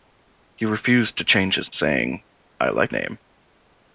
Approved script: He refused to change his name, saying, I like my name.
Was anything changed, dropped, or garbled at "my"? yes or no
yes